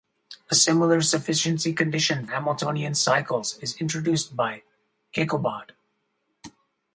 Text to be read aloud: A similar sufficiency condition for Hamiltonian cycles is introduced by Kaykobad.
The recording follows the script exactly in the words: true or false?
false